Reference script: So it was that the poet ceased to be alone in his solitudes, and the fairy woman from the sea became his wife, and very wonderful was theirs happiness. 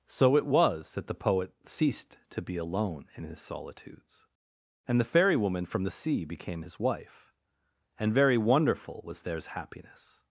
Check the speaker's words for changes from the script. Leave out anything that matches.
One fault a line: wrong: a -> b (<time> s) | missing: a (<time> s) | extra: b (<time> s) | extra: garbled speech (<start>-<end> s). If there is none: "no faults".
no faults